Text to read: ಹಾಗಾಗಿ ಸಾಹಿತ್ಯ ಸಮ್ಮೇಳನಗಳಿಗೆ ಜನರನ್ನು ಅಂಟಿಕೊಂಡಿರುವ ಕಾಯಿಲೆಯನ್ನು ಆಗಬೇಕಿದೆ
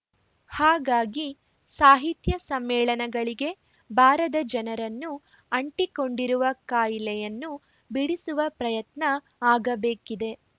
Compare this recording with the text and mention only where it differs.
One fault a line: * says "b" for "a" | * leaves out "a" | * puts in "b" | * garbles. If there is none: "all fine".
* puts in "ಬಾರದ"
* puts in "ಬಿಡಿಸುವ ಪ್ರಯತ್ನ"